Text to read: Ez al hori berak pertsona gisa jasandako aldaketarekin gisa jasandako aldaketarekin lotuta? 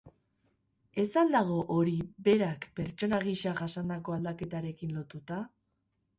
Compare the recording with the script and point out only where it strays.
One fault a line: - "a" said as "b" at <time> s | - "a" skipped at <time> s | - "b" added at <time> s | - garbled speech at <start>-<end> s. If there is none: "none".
- "dago" added at 1.4 s
- "gisa jasandako aldaketarekin" skipped at 5.0 s